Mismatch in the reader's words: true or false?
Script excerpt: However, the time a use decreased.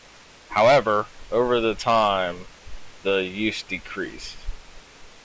true